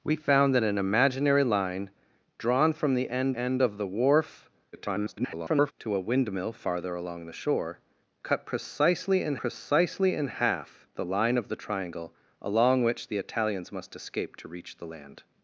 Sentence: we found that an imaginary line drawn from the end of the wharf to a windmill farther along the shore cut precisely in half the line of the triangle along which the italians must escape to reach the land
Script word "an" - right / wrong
right